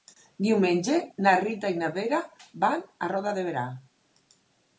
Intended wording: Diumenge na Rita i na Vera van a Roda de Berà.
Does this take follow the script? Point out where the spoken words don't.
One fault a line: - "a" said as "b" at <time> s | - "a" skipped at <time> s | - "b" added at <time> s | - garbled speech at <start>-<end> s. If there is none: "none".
none